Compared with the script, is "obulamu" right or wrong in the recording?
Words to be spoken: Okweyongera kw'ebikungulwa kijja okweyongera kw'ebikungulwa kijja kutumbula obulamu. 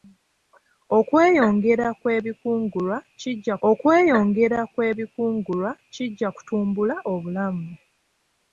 right